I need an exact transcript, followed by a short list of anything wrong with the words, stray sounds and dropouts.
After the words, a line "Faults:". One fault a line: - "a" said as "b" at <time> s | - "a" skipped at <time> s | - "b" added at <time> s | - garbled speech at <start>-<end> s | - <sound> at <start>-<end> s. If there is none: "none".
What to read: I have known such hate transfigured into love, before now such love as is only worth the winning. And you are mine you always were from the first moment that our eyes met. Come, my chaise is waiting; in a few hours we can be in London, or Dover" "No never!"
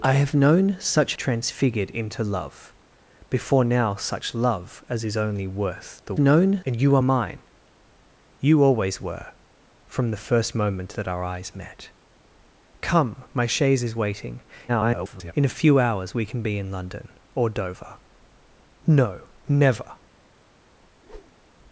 I have known such transfigured into love, before now such love as is only worth the known. And you are mine you always were from the first moment that our eyes met. Come, my chaise is waiting; [garbled] in a few hours we can be in London, or Dover" "No never!"
Faults:
- "hate" skipped at 1.1 s
- "winning" said as "known" at 6.2 s
- garbled speech at 14.7-15.3 s
- whoosh at 20.8-21.5 s